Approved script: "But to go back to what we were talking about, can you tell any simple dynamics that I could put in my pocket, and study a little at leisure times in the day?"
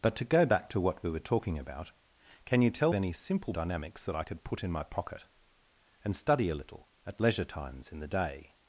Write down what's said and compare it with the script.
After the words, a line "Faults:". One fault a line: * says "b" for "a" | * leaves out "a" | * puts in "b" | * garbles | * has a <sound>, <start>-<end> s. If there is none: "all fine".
"But to go back to what we were talking about, can you tell any simple dynamics that I could put in my pocket, and study a little at leisure times in the day?"
Faults:
all fine